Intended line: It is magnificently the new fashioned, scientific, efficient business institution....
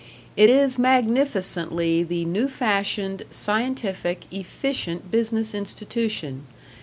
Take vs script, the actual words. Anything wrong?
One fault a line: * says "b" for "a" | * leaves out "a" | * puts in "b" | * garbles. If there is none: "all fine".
all fine